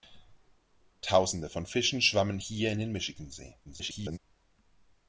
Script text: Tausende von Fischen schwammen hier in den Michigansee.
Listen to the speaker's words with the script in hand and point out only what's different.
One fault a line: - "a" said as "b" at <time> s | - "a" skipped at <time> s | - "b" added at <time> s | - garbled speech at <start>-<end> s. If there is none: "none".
- garbled speech at 3.6-4.2 s